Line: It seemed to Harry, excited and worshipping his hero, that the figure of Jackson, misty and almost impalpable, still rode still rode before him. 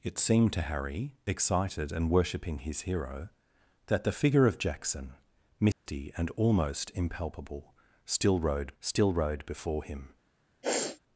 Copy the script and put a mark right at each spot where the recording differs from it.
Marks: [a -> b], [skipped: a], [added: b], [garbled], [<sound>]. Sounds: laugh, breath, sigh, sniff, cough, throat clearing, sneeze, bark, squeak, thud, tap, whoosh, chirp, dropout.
It seemed to Harry, excited and worshipping his hero, that the figure of Jackson, misty [dropout] and almost impalpable, still rode still rode before him. [sniff]